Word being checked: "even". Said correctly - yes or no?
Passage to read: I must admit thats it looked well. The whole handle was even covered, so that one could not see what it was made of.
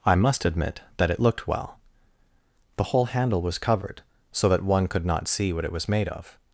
no